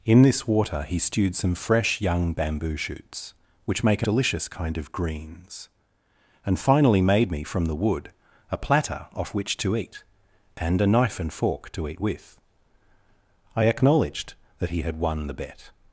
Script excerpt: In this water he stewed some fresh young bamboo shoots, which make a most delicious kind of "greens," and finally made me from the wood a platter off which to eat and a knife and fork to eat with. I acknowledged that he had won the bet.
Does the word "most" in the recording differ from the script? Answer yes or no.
yes